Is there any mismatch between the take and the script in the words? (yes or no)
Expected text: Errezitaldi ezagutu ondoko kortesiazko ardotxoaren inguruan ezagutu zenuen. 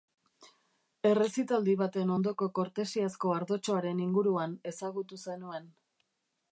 yes